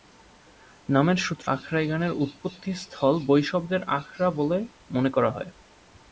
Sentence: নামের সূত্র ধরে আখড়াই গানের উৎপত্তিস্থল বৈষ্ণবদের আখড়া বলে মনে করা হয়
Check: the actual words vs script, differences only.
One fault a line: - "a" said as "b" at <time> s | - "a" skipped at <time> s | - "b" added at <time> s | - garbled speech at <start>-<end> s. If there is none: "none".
- "ধরে" skipped at 1.5 s